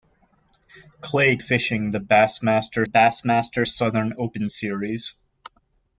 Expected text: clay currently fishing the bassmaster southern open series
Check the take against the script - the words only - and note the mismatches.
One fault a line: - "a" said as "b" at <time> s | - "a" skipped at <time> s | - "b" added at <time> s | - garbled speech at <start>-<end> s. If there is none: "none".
- "currently" skipped at 1.4 s
- "bassmaster" added at 2.8 s